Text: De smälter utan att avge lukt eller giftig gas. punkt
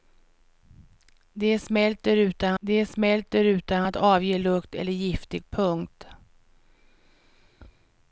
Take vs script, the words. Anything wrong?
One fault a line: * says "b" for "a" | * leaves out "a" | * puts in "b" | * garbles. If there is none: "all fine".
* puts in "de smälter utan"
* leaves out "gas"